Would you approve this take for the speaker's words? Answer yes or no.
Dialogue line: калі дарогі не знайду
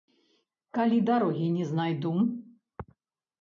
yes